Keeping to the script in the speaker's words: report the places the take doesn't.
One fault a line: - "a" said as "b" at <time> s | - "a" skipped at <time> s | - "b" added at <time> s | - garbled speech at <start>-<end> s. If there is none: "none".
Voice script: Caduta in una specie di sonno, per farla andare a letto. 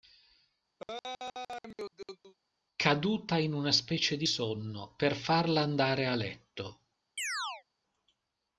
none